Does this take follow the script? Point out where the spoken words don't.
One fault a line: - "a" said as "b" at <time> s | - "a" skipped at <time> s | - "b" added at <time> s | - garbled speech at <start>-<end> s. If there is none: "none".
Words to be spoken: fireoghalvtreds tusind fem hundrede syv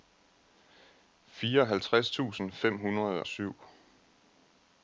none